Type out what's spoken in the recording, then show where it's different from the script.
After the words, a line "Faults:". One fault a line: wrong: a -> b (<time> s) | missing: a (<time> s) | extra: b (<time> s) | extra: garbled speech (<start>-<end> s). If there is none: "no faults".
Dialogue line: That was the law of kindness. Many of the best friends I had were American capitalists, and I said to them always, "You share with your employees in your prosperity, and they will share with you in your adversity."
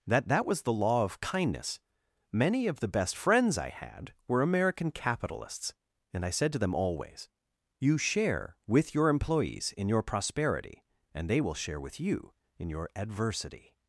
That that was the law of kindness. Many of the best friends I had were American capitalists, and I said to them always, "You share with your employees in your prosperity, and they will share with you in your adversity."
Faults:
extra: that (0.3 s)